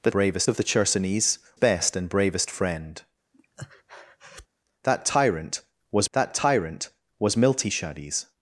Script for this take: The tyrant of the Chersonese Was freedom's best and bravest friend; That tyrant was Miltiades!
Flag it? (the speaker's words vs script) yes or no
yes